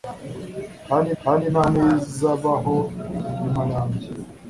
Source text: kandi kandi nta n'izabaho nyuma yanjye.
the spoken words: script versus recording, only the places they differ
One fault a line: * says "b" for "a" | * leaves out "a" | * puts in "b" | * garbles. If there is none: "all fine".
all fine